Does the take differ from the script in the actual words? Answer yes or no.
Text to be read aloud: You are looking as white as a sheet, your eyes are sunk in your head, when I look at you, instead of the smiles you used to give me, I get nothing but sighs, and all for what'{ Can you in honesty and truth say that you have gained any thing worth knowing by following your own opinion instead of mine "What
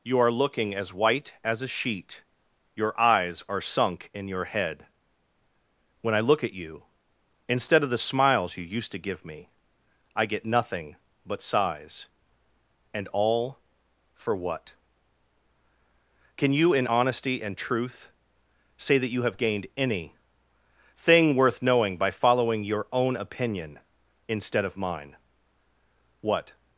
no